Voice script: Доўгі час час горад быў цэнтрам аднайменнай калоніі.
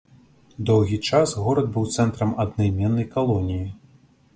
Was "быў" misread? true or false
false